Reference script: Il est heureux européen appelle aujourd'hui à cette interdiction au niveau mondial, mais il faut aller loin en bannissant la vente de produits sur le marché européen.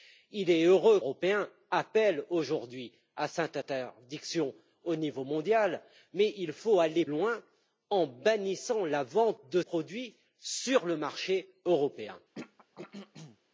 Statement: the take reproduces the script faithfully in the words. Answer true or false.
true